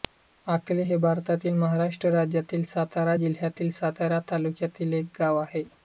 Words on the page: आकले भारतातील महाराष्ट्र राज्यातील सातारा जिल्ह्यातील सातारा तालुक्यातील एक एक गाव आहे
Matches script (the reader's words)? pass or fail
fail